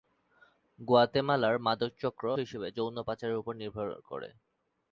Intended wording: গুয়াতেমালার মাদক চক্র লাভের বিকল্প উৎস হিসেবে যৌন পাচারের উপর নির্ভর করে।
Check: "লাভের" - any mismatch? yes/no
yes